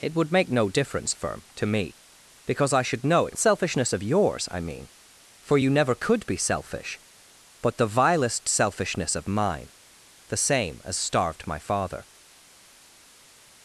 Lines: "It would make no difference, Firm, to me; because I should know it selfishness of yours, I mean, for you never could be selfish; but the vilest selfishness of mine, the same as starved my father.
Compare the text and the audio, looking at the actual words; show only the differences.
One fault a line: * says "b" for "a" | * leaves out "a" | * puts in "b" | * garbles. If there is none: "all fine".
all fine